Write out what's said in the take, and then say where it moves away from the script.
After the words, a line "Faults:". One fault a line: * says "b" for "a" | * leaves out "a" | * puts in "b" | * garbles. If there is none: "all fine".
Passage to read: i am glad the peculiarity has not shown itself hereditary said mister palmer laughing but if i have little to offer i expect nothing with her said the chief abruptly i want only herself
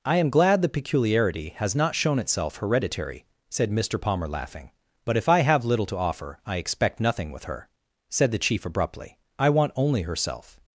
i am glad the peculiarity has not shown itself hereditary said mister palmer laughing but if i have little to offer i expect nothing with her said the chief abruptly i want only herself
Faults:
all fine